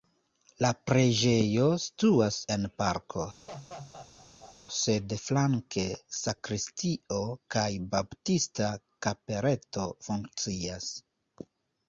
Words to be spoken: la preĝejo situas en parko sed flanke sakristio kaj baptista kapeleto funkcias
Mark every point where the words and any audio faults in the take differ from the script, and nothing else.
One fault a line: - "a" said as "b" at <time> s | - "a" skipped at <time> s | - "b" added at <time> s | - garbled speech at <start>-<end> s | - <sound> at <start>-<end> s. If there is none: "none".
- laugh at 3.5-4.6 s